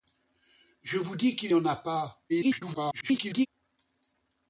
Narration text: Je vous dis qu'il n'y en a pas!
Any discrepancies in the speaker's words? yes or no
yes